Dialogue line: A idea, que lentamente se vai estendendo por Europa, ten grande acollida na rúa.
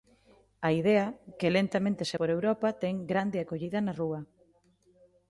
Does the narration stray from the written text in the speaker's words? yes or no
yes